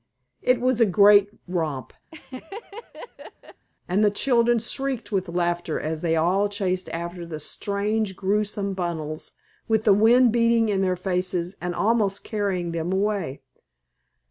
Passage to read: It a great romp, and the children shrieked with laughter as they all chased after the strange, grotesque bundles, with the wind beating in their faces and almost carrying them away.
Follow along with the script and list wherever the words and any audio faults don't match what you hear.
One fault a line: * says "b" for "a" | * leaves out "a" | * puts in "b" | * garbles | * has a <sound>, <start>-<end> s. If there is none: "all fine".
* puts in "was"
* has a laugh, 2.1-3.7 s